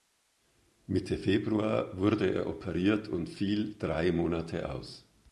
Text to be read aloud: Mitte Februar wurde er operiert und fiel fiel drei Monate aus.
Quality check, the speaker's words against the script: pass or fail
fail